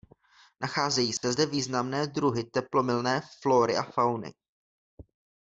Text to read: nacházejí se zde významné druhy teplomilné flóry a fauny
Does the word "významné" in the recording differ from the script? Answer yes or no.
no